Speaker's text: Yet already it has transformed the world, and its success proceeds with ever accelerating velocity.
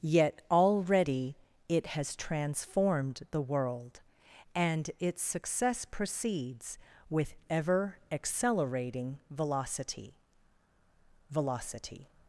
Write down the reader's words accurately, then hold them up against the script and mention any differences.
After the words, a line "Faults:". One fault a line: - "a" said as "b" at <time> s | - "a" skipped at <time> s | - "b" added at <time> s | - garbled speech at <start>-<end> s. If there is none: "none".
Yet already it has transformed the world, and its success proceeds with ever accelerating velocity velocity.
Faults:
- "velocity" added at 11.3 s